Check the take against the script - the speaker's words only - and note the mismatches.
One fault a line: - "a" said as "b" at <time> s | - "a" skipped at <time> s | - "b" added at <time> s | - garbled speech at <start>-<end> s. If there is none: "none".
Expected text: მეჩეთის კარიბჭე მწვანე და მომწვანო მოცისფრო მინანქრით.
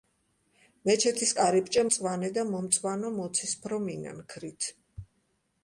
none